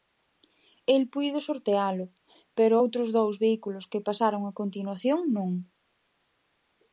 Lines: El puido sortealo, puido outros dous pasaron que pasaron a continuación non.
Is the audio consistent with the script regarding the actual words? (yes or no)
no